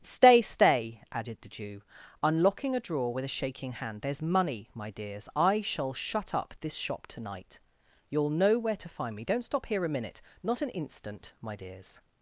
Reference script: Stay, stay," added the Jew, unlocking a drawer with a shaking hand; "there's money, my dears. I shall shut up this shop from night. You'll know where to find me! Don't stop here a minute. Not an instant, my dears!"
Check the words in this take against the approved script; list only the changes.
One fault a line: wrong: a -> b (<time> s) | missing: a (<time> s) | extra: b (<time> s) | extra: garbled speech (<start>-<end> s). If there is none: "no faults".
wrong: from -> to (7.1 s)